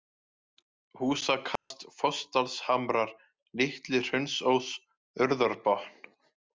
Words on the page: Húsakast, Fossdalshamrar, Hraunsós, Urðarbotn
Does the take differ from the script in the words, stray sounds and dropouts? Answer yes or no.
yes